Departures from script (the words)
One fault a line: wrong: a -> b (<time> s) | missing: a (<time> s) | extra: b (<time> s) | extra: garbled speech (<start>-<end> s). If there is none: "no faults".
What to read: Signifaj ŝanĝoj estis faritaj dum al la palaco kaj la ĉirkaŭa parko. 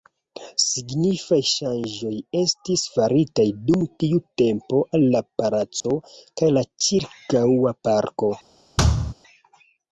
extra: tiu tempo (4.0 s)